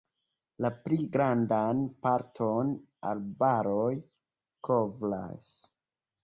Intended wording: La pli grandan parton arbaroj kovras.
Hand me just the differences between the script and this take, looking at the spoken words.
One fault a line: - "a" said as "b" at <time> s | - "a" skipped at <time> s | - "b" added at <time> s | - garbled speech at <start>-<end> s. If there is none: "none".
none